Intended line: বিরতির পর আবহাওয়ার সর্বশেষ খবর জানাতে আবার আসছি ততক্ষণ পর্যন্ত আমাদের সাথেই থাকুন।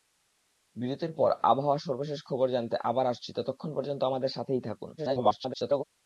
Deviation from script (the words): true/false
true